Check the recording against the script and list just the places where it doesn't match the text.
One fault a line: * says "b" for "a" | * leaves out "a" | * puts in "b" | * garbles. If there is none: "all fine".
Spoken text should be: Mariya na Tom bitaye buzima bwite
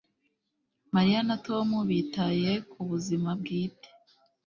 * puts in "ku"